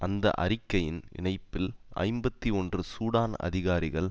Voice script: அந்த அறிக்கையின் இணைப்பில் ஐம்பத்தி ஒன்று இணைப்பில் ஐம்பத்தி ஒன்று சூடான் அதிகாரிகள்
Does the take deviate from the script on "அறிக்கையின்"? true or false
false